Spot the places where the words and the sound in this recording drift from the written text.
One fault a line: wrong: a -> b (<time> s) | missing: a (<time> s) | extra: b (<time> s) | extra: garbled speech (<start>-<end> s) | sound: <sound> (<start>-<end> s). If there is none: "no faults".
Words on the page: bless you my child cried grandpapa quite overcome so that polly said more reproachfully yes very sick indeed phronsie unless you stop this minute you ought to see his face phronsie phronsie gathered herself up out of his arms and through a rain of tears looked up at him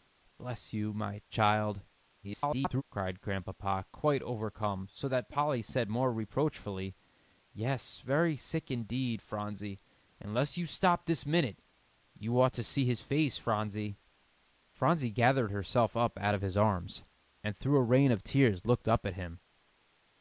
extra: garbled speech (2.2-2.8 s)